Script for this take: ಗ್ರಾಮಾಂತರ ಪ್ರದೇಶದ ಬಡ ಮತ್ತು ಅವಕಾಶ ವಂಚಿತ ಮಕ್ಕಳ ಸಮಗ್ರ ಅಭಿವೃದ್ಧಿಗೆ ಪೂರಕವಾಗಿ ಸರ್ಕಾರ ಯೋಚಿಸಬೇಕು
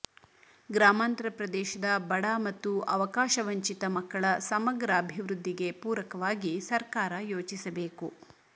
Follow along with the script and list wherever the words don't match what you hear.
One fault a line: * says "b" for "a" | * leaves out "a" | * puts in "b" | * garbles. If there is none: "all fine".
all fine